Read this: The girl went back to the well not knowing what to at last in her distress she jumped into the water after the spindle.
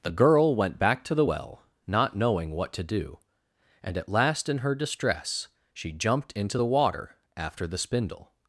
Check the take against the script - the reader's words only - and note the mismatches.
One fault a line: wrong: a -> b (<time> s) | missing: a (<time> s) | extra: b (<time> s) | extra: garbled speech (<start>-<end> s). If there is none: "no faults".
extra: do and (2.8 s)